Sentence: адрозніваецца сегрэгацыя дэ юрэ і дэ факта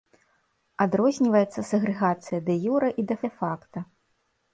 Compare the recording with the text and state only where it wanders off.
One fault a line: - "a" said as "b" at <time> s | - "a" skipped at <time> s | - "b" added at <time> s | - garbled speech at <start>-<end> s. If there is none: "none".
- "дэ" added at 3.3 s